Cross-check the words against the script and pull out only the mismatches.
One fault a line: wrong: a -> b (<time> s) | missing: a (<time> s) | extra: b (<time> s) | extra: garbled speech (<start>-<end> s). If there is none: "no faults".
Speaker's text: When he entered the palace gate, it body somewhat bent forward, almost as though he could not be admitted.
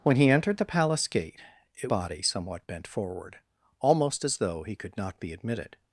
no faults